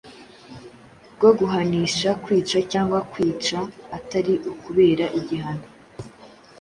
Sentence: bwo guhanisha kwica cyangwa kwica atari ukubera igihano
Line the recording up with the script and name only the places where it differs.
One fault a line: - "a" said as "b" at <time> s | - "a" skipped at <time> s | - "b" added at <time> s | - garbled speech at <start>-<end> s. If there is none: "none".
none